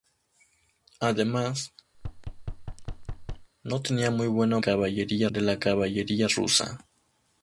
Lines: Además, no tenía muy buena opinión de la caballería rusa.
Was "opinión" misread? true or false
true